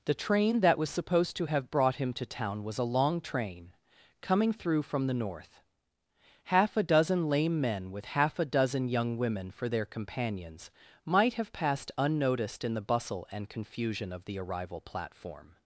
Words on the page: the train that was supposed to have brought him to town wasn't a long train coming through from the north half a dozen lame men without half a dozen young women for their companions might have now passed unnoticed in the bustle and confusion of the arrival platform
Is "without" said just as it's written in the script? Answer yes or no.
no